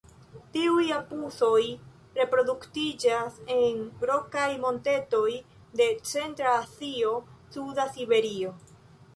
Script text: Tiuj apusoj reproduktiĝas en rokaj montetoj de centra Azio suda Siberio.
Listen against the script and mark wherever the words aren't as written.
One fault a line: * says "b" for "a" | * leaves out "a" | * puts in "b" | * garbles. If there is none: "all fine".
all fine